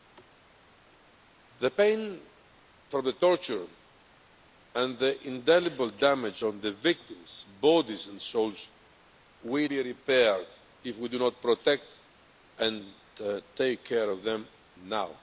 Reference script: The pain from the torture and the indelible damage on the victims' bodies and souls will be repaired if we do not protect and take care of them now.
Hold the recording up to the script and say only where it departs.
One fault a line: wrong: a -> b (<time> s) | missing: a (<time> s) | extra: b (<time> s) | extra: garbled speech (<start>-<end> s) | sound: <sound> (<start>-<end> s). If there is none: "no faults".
no faults